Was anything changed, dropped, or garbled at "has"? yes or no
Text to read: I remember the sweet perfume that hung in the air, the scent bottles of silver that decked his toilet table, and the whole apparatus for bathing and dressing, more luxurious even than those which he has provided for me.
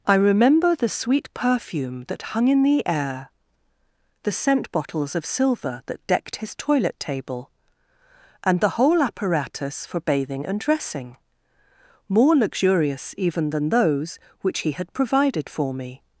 yes